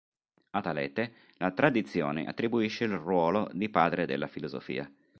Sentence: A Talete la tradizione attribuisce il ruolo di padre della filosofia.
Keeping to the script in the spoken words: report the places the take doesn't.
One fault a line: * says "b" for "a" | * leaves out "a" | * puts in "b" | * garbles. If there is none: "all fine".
all fine